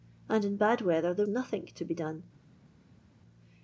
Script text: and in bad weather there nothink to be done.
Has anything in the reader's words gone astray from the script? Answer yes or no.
no